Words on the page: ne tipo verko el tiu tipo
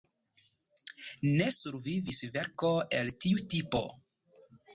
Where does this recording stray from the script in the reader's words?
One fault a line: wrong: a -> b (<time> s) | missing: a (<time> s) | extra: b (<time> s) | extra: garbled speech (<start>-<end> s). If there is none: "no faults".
wrong: tipo -> survivis (1.6 s)